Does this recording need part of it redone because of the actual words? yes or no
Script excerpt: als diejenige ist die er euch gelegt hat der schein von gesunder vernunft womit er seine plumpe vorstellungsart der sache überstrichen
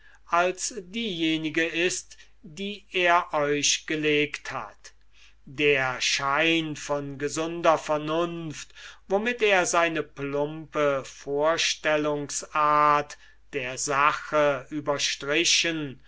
no